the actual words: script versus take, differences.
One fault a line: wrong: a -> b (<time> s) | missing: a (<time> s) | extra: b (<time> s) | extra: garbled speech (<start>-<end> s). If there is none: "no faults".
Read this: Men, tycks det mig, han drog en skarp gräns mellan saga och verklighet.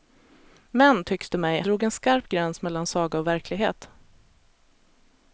missing: han (1.6 s)